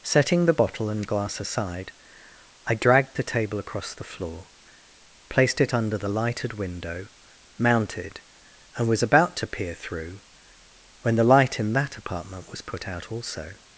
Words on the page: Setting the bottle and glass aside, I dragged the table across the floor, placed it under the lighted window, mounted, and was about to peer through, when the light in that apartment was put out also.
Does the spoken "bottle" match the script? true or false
true